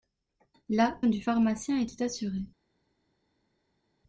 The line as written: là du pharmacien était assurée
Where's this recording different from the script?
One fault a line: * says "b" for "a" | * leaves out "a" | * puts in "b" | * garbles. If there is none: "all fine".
all fine